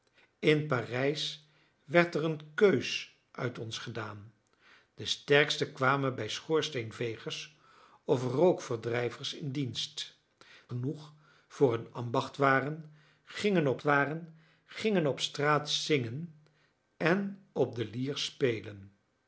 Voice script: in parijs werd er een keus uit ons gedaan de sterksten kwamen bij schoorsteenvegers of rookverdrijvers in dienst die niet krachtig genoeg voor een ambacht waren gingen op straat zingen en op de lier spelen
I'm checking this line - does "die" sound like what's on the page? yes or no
no